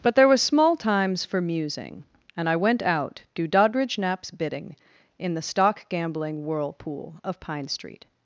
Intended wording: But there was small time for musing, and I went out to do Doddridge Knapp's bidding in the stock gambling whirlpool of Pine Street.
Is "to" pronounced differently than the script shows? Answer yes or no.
yes